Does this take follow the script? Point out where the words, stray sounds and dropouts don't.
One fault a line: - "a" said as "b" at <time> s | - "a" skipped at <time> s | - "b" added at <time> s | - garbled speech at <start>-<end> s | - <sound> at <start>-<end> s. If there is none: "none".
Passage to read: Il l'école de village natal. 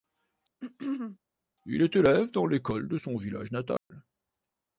- throat clearing at 0.6-1.2 s
- "est élève dans" added at 1.8 s
- "son" added at 2.9 s
- dropout at 3.8-3.9 s